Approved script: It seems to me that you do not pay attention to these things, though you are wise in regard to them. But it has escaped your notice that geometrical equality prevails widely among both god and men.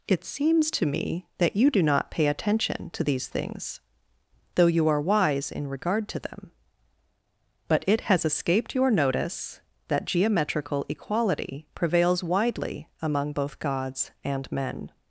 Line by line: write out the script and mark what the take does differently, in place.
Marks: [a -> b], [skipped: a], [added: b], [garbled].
It seems to me that you do not pay attention to these things, though you are wise in regard to them. But it has escaped your notice that geometrical equality prevails widely among both [god -> gods] and men.